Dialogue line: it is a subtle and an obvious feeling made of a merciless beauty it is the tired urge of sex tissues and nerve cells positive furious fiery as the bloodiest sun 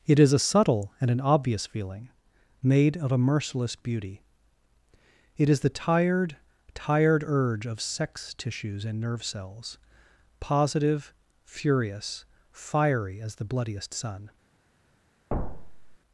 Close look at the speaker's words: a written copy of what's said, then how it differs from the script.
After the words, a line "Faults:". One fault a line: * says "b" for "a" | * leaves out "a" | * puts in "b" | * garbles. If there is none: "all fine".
it is a subtle and an obvious feeling made of a merciless beauty it is the tired tired urge of sex tissues and nerve cells positive furious fiery as the bloodiest sun
Faults:
* puts in "tired"